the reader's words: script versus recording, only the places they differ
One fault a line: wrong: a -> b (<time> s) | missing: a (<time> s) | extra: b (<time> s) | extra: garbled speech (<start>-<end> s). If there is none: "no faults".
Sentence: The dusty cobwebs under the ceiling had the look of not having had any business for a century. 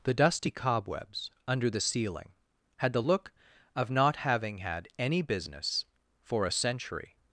no faults